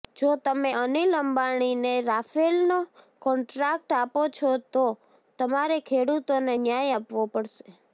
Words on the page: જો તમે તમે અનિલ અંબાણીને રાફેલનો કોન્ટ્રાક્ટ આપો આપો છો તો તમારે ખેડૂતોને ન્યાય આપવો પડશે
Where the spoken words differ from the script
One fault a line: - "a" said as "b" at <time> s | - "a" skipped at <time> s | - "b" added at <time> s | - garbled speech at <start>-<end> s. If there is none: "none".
- "તમે" skipped at 0.7 s
- "આપો" skipped at 4.2 s